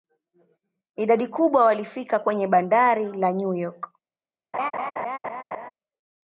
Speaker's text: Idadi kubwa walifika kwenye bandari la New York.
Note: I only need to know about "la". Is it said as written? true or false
true